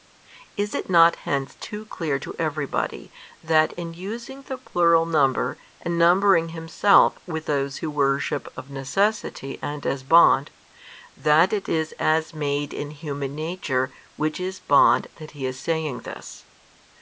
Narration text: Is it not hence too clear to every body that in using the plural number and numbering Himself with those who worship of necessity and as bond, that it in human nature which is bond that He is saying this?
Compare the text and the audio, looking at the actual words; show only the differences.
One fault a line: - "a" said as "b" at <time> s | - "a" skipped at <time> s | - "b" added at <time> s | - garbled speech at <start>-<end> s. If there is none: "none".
- "is as made" added at 11.7 s